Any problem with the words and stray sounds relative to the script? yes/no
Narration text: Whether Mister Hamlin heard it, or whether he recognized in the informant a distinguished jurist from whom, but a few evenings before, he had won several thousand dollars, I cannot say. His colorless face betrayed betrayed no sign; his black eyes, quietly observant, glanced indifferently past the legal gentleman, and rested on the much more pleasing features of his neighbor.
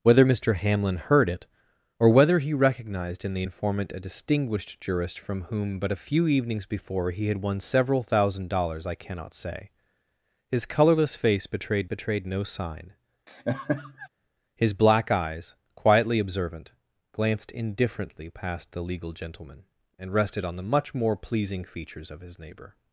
yes